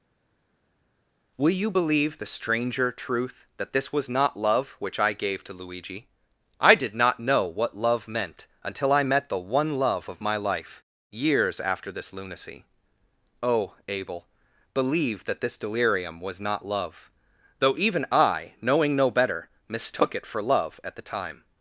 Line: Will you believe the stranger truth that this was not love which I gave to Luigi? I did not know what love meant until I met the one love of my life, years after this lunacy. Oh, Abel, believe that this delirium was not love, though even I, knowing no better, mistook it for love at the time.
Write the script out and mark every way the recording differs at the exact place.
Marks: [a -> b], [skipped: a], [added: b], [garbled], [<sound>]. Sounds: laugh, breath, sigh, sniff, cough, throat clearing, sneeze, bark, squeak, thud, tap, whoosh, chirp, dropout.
Will you believe the stranger truth that this was not love which I gave to Luigi? I did not know what love meant until I met the one love of my life, years after this lunacy. Oh, Abel, believe that this delirium was not love, though even I, knowing no better, mistook it for love at the time.